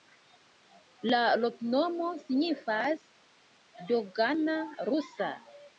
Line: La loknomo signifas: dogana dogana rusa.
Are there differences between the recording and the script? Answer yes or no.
yes